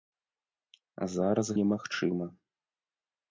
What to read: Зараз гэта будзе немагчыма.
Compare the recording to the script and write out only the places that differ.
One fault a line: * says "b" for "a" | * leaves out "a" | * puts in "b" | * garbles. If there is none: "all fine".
* leaves out "гэта будзе"